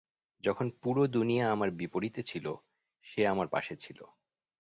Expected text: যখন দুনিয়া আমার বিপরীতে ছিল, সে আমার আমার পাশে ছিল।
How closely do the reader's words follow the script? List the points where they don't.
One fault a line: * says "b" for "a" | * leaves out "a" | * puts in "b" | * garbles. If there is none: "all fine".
* puts in "পুরো"
* leaves out "আমার"